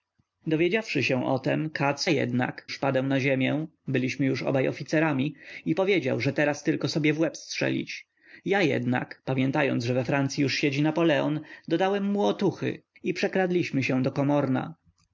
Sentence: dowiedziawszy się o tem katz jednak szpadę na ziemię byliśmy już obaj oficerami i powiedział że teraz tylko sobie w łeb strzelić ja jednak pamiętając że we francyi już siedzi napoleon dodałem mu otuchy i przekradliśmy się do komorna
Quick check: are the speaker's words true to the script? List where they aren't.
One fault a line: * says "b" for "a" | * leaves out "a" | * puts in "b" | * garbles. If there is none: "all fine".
all fine